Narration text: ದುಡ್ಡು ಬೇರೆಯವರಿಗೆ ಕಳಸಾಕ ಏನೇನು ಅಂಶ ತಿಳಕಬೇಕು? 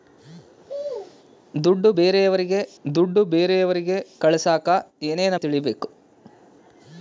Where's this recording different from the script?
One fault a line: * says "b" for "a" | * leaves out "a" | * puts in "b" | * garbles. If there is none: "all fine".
* puts in "ದುಡ್ಡು ಬೇರೆಯವರಿಗೆ"
* leaves out "ಅಂಶ"